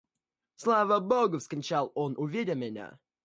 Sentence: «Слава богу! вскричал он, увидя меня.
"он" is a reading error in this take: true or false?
false